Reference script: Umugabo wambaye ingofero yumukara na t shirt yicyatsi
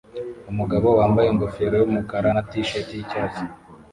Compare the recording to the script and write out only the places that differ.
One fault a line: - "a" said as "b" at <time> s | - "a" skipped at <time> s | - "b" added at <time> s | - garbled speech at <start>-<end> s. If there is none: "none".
none